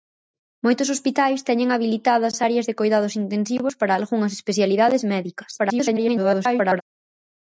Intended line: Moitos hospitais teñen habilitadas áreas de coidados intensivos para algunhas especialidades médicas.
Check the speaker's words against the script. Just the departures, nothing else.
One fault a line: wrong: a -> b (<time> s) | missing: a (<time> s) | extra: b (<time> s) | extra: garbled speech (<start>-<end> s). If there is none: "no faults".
extra: garbled speech (5.6-6.8 s)